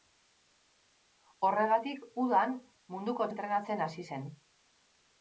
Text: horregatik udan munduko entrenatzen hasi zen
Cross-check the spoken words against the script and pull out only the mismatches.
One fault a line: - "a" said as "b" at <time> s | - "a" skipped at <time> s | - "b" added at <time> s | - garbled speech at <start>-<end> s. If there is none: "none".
none